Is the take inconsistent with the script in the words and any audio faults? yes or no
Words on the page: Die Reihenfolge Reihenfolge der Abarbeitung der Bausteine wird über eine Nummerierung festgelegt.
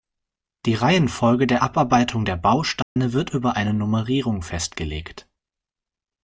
yes